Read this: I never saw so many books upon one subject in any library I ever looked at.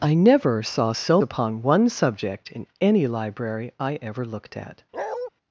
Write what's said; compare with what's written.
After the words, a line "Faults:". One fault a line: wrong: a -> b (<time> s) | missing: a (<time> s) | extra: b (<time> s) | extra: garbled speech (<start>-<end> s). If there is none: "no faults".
I never saw so upon one subject in any library I ever looked at.
Faults:
missing: many books (1.2 s)